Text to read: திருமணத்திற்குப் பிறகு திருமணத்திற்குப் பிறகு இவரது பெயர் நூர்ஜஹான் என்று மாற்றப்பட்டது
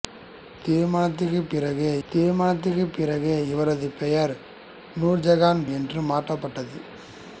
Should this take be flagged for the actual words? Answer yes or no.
no